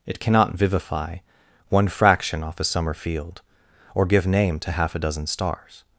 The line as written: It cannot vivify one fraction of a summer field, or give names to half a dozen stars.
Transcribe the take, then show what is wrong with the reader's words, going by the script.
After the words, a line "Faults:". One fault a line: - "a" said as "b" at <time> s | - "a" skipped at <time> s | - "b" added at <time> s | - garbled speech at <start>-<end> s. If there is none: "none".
It cannot vivify one fraction off a summer field, or give name to half a dozen stars.
Faults:
- "of" said as "off" at 2.4 s
- "names" said as "name" at 4.3 s